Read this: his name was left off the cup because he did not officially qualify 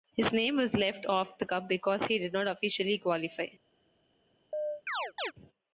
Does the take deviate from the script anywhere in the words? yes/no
no